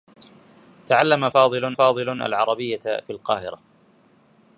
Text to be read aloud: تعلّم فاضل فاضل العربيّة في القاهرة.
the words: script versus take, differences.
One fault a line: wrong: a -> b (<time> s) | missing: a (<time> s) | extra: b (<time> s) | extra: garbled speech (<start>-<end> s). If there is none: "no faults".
no faults